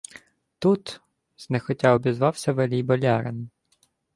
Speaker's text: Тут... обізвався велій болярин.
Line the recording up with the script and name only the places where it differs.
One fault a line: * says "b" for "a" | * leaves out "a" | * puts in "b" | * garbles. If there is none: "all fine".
* puts in "знехотя"